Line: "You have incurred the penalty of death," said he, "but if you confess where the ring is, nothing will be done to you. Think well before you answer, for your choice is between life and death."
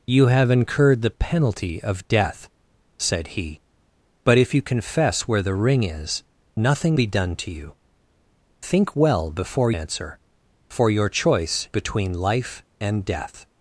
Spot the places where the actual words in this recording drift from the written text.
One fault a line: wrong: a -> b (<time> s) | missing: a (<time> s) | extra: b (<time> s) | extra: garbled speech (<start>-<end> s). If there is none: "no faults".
missing: will (7.0 s)
missing: you (9.7 s)
missing: is (11.7 s)